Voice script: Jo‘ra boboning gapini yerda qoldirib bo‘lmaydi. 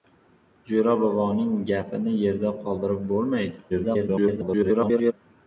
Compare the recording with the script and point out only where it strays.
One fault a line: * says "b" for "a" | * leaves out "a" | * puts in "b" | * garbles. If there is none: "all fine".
* garbles